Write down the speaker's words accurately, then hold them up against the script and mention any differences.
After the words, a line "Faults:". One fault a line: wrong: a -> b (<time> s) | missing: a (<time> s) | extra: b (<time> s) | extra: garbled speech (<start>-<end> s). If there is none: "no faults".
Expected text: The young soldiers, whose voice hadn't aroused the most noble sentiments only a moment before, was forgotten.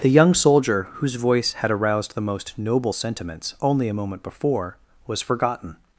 The young soldier, whose voice had aroused the most noble sentiments only a moment before, was forgotten.
Faults:
wrong: soldiers -> soldier (0.3 s)
wrong: hadn't -> had (1.5 s)